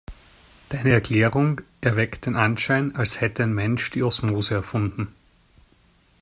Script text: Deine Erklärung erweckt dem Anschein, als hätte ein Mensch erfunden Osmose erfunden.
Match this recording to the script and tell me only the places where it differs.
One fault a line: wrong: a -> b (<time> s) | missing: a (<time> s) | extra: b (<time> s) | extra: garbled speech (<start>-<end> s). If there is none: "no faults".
wrong: dem -> den (2.2 s)
wrong: erfunden -> die (3.9 s)